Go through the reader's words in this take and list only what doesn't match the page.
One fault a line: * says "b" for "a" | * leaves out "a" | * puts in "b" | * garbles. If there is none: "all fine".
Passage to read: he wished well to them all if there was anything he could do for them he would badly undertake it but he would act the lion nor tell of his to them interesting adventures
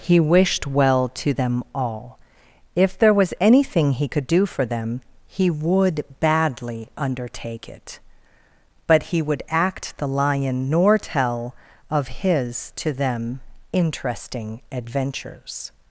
all fine